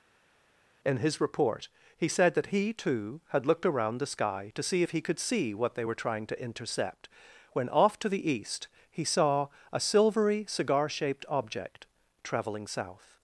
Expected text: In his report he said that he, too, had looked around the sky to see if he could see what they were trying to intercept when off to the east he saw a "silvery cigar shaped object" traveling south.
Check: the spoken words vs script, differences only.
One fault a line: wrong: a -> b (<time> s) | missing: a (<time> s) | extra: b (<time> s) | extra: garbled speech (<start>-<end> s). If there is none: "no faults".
no faults